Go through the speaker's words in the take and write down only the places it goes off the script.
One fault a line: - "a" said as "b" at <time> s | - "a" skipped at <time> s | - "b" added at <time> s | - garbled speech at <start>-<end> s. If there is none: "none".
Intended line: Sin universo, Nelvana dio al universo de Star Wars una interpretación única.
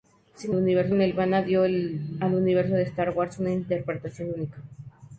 none